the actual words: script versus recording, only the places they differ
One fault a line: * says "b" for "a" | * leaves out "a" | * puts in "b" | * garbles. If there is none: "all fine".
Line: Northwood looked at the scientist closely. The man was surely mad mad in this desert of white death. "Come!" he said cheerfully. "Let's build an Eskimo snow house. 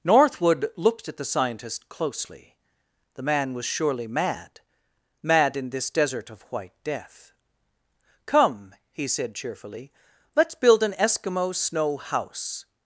all fine